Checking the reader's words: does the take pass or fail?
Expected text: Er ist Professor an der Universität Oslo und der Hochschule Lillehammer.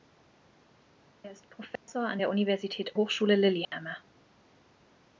fail